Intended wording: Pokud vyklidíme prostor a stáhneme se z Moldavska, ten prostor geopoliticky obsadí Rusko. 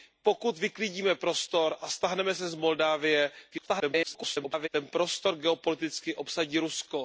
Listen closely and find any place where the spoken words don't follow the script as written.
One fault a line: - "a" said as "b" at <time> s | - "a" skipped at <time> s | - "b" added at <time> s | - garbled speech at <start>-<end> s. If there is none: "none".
- garbled speech at 3.5-4.7 s